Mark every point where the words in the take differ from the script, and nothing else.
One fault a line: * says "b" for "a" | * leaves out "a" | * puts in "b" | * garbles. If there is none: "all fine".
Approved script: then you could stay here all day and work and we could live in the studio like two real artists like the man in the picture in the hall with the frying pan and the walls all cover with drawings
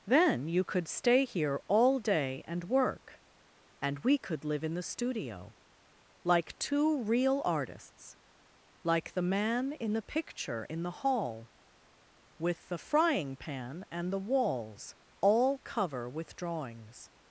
all fine